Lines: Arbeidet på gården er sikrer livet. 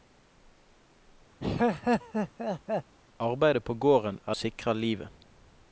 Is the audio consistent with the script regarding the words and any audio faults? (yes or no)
no